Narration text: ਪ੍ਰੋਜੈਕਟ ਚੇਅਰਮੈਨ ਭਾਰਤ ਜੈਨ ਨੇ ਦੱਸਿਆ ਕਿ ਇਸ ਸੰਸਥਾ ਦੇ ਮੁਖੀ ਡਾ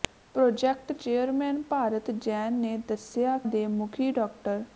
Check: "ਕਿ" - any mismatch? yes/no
yes